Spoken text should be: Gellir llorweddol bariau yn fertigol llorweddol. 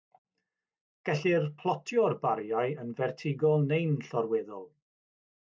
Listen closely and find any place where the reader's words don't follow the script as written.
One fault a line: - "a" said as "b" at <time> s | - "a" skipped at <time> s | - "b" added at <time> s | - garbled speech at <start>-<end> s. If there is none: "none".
- "llorweddol" said as "plotio'r" at 1.6 s
- "neu'n" added at 3.7 s